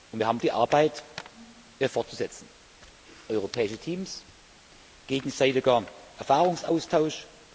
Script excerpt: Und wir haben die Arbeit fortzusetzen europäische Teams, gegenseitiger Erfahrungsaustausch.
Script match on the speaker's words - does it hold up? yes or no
yes